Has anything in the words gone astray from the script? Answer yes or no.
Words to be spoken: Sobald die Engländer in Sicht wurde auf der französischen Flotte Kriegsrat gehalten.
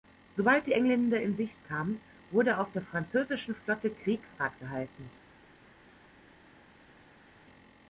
yes